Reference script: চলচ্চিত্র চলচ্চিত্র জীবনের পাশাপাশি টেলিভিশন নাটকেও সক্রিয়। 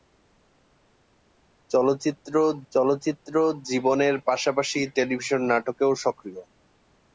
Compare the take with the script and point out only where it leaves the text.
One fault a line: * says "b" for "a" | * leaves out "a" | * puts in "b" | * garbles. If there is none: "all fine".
all fine